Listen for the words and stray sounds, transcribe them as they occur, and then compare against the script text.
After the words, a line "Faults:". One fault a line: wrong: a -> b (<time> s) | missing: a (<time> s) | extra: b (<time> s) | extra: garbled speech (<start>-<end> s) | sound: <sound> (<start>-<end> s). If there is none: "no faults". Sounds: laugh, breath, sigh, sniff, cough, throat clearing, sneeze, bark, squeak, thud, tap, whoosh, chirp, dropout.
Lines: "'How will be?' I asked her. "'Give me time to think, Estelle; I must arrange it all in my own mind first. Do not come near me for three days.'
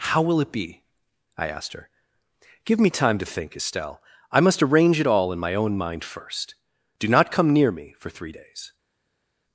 "'How will it be?' I asked her. "'Give me time to think, Estelle; I must arrange it all in my own mind first. Do not come near me for three days.'
Faults:
extra: it (0.4 s)